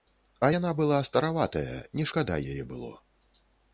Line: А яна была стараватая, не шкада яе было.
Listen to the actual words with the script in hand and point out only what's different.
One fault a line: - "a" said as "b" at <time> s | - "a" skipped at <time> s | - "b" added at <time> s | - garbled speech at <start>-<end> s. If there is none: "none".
none